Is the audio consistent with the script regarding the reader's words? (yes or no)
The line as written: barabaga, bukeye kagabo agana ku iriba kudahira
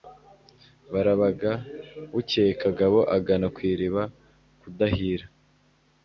yes